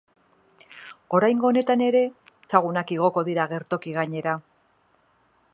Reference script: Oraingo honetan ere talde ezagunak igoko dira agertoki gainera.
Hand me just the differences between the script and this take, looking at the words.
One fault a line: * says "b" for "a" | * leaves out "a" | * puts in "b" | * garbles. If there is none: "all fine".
* leaves out "talde"